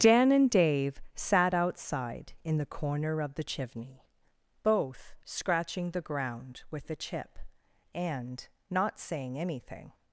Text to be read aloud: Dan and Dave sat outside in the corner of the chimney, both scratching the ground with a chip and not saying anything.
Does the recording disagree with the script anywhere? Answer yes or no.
no